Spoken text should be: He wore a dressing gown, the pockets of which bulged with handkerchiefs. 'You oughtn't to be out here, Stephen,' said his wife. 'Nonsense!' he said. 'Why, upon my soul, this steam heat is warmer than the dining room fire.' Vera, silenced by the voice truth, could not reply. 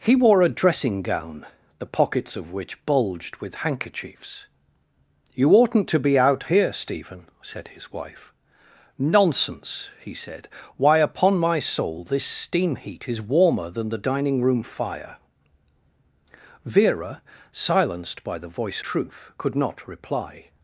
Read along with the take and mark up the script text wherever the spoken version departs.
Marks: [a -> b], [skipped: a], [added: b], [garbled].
He wore a dressing gown, the pockets of which bulged with handkerchiefs. 'You oughtn't to be out here, Stephen,' said his wife. 'Nonsense!' he said. 'Why, upon my soul, this steam heat is warmer than the dining room fire.' Vera, silenced by the voice truth, could not reply.